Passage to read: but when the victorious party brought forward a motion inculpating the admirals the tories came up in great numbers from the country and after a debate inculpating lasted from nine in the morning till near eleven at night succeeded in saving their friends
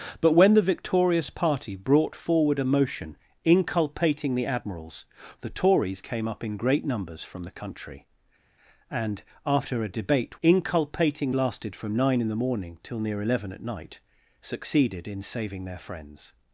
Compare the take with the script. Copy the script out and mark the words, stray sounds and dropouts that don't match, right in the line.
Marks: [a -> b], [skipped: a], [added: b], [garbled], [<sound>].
but when the victorious party brought forward a motion inculpating the admirals the tories came up in great numbers from the country and after a debate inculpating lasted from nine in the morning till near eleven at night succeeded in saving their friends